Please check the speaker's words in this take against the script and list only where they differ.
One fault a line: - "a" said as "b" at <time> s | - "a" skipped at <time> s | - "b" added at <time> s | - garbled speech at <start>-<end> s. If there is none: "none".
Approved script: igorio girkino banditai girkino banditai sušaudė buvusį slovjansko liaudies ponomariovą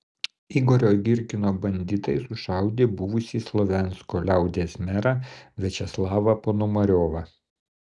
- "girkino banditai" skipped at 2.1 s
- "merą viačeslavą" added at 4.9 s